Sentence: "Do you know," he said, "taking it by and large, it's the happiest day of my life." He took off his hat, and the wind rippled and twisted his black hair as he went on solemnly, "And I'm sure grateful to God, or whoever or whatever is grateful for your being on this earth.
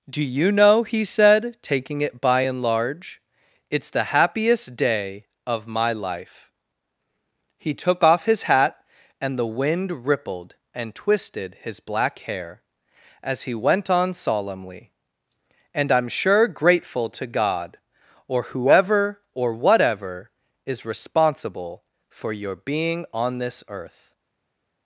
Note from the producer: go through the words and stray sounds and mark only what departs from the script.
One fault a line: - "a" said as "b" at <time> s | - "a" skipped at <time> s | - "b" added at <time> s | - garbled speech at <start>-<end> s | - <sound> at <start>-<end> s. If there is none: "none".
- "grateful" said as "responsible" at 20.9 s